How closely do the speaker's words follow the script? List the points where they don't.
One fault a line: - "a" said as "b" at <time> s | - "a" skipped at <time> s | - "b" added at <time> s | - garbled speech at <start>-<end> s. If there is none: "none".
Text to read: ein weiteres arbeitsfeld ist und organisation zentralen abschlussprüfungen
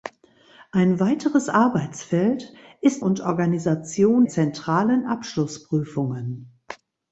none